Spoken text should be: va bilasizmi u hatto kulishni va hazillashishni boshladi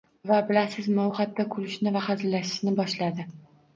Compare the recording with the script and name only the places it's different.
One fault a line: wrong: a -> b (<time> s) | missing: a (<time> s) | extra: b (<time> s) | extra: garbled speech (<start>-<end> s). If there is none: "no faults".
no faults